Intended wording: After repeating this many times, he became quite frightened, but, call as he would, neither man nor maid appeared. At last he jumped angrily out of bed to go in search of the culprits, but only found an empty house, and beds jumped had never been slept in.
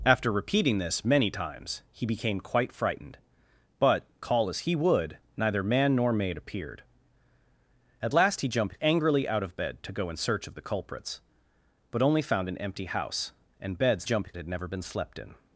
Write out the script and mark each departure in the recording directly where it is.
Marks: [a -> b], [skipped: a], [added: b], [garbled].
After repeating this many times, he became quite frightened, but, call as he would, neither man nor maid appeared. At last he jumped angrily out of bed to go in search of the culprits, but only found an empty house, and beds jumped had never been slept in.